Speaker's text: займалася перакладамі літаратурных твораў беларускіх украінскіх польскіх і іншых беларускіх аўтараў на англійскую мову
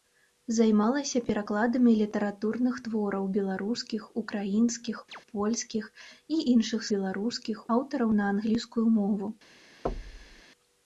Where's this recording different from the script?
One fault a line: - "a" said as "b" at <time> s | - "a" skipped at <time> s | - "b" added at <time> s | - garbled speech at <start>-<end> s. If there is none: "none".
none